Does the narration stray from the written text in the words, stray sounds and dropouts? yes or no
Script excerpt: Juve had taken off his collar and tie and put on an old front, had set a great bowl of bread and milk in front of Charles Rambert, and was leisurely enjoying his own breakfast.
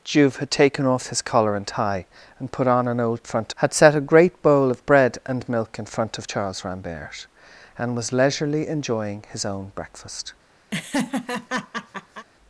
yes